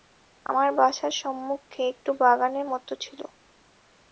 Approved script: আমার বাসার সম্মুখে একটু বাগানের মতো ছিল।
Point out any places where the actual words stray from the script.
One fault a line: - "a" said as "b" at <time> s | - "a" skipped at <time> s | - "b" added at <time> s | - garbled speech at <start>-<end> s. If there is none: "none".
none